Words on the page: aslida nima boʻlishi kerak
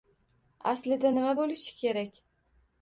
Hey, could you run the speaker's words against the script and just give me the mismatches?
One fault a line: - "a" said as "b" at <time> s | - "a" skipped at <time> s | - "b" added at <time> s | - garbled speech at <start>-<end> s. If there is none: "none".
none